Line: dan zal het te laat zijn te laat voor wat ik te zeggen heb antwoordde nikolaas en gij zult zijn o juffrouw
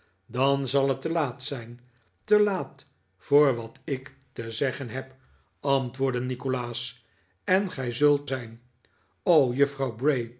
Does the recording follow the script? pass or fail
pass